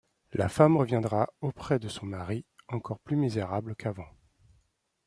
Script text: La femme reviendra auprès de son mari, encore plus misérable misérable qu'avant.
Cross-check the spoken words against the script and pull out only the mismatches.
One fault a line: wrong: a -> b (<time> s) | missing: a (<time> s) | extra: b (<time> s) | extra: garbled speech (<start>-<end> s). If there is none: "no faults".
missing: misérable (3.7 s)